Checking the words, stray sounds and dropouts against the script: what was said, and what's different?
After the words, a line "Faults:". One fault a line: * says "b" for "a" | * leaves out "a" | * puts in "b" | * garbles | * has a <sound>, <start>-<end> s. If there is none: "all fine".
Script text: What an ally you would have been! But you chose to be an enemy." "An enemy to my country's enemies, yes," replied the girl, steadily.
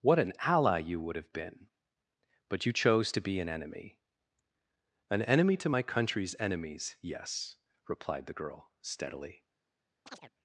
What an ally you would have been! But you chose to be an enemy." "An enemy to my country's enemies, yes," replied the girl, steadily.
Faults:
* has a chirp, 10.1-10.3 s